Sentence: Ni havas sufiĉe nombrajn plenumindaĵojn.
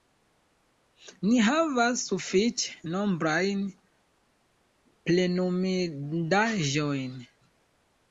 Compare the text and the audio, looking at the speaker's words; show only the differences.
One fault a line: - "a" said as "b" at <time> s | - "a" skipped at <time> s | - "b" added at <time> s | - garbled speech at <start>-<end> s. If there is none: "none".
none